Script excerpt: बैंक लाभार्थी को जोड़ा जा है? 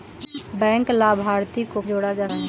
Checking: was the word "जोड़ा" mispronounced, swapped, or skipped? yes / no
no